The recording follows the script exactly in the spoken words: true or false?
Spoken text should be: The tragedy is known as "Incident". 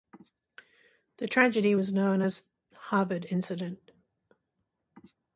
false